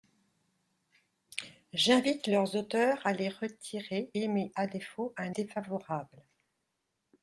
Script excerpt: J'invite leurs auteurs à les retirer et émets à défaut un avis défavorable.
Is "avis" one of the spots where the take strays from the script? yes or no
yes